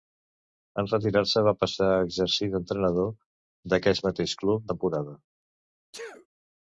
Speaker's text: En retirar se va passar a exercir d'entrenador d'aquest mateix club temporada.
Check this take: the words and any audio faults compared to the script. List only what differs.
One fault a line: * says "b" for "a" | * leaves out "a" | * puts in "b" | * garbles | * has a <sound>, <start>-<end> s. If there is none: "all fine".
* has a sneeze, 5.9-6.3 s